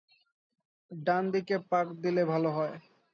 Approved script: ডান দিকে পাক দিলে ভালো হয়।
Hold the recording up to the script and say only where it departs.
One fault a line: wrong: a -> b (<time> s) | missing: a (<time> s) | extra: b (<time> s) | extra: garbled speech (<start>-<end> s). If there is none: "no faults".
no faults